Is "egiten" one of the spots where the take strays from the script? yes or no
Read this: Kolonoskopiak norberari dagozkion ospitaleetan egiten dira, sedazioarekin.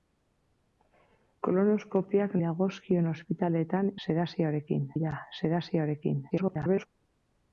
yes